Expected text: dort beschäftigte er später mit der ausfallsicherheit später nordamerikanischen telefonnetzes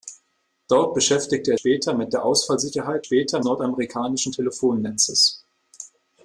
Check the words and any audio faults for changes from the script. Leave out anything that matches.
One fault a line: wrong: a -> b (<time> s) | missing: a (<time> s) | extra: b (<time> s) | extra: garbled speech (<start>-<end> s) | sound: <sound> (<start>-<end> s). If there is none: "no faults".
no faults